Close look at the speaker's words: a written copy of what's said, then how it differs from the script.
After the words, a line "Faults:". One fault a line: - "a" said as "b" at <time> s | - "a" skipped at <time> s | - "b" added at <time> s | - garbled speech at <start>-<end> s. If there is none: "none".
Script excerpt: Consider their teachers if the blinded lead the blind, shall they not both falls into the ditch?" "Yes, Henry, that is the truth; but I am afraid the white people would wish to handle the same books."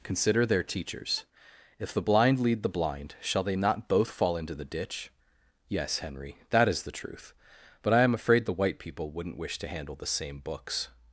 Consider their teachers if the blind lead the blind, shall they not both fall into the ditch?" "Yes, Henry, that is the truth; but I am afraid the white people wouldn't wish to handle the same books."
Faults:
- "blinded" said as "blind" at 2.0 s
- "falls" said as "fall" at 4.1 s
- "would" said as "wouldn't" at 9.1 s